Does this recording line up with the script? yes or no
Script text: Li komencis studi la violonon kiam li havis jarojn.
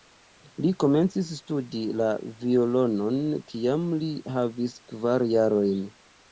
no